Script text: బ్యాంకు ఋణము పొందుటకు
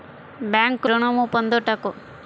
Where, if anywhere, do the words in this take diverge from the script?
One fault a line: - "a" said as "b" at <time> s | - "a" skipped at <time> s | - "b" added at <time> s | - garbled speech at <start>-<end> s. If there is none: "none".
none